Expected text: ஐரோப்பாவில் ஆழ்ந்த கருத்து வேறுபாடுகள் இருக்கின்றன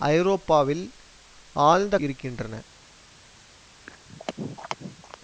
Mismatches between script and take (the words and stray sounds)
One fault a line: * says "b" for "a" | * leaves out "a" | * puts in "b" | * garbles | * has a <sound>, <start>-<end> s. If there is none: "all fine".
* leaves out "கருத்து வேறுபாடுகள்"
* has a throat clearing, 3.9-5.2 s